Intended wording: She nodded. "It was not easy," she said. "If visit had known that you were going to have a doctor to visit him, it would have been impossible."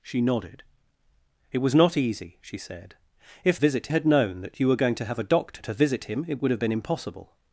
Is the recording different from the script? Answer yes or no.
no